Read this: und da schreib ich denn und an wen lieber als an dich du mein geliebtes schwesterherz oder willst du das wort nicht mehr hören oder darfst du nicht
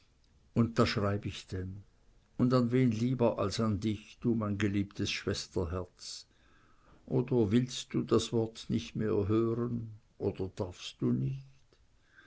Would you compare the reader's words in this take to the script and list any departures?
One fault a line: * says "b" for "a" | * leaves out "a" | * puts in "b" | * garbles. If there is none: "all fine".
all fine